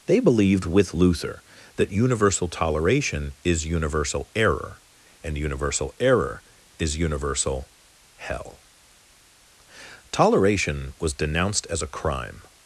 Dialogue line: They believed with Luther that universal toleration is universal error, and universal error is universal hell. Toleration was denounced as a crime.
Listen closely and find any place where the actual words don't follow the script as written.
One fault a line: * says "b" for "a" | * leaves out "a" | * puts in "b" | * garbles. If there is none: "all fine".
all fine